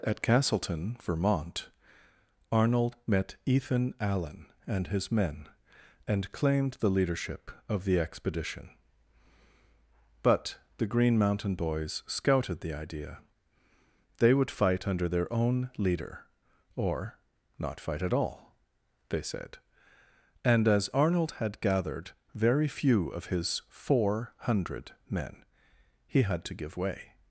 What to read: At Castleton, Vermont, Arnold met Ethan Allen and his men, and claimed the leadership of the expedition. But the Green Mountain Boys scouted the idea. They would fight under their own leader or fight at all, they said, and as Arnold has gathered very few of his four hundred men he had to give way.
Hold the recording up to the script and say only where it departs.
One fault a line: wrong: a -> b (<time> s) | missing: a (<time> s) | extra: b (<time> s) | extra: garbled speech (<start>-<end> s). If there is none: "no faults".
extra: not (17.6 s)
wrong: has -> had (21.3 s)